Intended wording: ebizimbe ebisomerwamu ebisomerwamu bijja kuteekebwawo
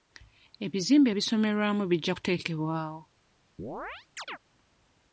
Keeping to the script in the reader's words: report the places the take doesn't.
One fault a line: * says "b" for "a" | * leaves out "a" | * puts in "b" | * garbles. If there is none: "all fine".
* leaves out "ebisomerwamu"